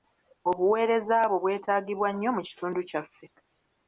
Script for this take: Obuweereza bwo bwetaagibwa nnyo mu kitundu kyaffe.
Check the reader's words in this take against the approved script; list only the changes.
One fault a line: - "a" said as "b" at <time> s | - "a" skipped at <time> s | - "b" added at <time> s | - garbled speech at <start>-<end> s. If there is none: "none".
none